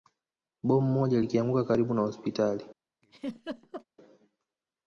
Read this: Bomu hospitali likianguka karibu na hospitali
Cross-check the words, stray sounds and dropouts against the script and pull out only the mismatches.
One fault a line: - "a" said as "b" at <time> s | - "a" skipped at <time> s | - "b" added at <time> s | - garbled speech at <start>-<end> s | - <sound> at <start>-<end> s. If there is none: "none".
- "hospitali" said as "moja" at 0.9 s
- laugh at 3.0-3.8 s